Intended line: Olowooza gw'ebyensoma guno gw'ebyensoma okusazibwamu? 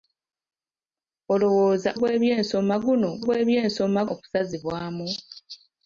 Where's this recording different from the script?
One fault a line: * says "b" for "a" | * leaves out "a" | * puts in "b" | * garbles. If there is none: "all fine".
all fine